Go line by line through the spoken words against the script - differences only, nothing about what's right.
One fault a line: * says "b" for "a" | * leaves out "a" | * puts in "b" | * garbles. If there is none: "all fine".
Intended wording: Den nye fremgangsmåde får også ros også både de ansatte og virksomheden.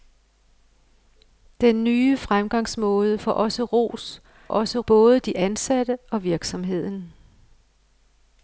all fine